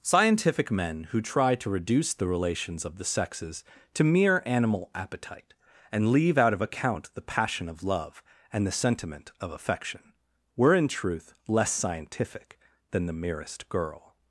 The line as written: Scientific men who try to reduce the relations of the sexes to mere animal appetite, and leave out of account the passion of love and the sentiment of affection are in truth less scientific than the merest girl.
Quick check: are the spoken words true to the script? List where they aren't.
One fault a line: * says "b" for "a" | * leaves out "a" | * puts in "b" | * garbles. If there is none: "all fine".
* says "were" for "are"